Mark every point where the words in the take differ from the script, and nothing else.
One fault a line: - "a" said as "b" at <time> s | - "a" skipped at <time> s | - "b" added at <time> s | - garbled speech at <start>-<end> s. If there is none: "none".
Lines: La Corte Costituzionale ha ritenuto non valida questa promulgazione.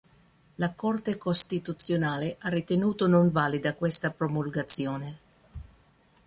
none